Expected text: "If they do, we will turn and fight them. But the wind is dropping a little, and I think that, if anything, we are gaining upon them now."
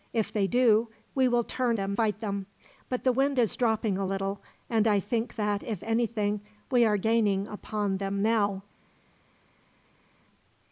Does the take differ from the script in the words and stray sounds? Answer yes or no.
yes